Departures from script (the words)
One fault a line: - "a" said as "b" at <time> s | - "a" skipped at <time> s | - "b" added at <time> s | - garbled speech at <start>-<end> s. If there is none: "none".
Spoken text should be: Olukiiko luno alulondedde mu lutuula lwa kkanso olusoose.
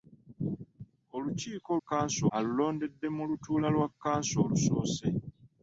- "luno" said as "kkanso" at 1.8 s